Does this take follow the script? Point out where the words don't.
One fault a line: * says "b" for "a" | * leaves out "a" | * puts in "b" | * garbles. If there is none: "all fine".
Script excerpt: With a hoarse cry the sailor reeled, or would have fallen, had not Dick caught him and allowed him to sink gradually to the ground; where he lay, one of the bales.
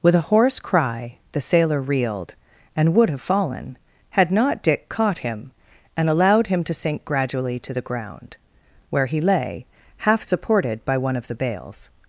* says "and" for "or"
* puts in "half supported by"